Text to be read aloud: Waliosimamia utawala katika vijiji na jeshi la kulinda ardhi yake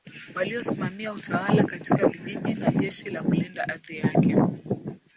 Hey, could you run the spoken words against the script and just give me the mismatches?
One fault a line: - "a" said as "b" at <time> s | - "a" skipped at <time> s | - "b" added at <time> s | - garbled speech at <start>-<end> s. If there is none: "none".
none